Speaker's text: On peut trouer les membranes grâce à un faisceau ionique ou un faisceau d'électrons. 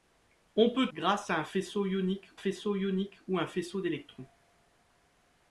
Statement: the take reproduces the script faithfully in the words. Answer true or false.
false